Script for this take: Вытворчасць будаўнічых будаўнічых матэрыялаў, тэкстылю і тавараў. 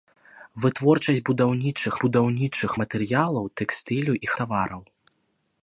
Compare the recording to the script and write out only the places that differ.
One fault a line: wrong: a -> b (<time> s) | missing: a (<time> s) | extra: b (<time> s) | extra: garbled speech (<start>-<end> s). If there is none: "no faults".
no faults